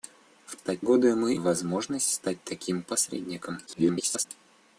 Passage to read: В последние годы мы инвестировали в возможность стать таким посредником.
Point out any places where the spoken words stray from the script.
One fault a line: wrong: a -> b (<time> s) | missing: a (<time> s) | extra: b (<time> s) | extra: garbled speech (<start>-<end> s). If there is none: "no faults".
wrong: последние -> стать (0.5 s)
missing: инвестировали (1.4 s)
extra: garbled speech (3.7-4.3 s)